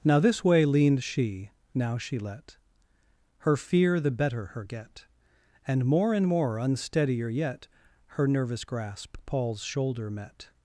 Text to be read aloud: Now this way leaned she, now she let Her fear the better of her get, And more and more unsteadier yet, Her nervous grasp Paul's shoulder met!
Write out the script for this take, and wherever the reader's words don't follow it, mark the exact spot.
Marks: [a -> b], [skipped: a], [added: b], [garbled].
Now this way leaned she, now she let Her fear the better [skipped: of] her get, And more and more unsteadier yet, Her nervous grasp Paul's shoulder met!